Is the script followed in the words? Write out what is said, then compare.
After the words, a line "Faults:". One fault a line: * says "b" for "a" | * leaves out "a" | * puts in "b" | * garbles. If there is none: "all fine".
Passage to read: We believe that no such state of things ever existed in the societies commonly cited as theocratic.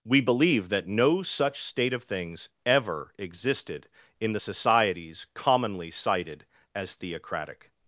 We believe that no such state of things ever existed in the societies commonly cited as theocratic.
Faults:
all fine